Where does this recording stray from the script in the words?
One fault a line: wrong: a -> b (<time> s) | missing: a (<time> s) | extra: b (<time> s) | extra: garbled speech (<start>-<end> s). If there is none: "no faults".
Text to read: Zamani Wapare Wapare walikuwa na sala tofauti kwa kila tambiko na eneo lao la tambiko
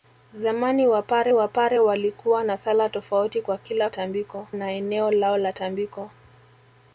no faults